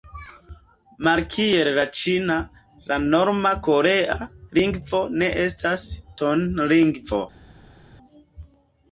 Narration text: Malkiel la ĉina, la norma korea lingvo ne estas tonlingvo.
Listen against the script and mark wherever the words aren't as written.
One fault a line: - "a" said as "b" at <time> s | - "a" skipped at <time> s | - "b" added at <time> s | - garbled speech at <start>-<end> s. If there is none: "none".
none